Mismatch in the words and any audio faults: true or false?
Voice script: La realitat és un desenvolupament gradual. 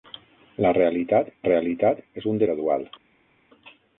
true